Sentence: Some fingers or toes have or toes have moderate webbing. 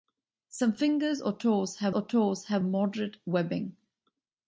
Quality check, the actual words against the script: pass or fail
pass